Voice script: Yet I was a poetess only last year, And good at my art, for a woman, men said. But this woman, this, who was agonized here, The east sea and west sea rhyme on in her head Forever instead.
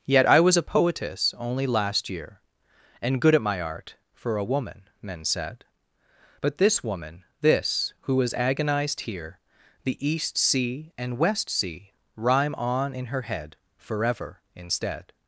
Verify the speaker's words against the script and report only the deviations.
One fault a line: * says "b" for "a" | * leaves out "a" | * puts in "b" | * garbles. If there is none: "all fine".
all fine